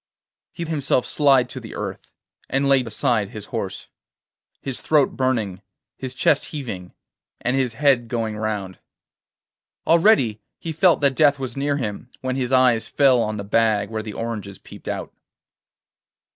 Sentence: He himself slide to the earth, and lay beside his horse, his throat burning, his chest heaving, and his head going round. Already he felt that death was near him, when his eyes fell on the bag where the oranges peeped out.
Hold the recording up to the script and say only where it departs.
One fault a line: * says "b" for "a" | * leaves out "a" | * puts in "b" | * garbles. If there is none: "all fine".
all fine